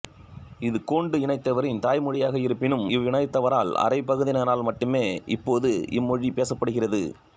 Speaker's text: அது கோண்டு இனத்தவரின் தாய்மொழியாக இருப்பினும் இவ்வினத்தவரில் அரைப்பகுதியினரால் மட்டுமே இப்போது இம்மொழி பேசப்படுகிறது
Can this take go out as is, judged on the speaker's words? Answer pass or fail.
fail